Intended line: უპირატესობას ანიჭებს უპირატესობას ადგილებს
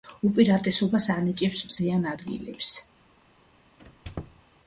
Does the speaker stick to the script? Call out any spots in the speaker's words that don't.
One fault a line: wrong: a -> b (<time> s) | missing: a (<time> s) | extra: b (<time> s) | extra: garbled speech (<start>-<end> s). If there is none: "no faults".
wrong: უპირატესობას -> მზიან (1.7 s)